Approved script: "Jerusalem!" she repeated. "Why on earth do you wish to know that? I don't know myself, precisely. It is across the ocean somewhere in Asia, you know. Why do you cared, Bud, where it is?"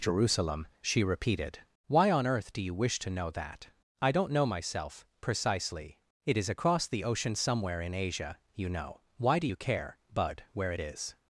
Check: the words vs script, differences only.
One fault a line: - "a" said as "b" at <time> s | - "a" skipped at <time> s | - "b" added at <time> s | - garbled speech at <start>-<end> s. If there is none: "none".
- "cared" said as "care" at 9.6 s